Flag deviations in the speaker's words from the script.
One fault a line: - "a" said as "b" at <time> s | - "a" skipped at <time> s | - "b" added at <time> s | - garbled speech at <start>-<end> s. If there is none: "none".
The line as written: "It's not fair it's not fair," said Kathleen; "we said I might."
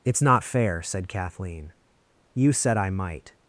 - "it's not fair" skipped at 0.8 s
- "we" said as "you" at 2.3 s